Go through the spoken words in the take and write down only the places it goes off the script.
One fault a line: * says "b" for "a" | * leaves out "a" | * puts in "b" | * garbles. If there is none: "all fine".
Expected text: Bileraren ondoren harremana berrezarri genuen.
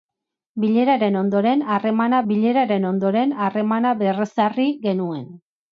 * puts in "bileraren ondoren harremana"